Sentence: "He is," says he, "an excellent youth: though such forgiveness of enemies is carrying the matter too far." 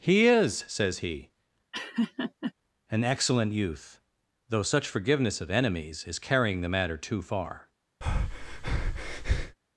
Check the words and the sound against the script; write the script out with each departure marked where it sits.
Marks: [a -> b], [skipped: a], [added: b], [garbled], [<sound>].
"He is," says he, [laugh] "an excellent youth: though such forgiveness of enemies is carrying the matter too far." [breath]